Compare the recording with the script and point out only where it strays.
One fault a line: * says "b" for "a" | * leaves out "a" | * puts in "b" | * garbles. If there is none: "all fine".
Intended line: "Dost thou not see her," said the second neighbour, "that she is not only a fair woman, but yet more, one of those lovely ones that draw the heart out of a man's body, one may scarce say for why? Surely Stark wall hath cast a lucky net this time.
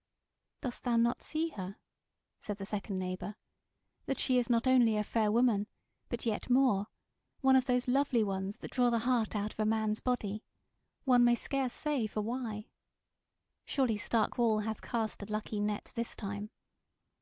all fine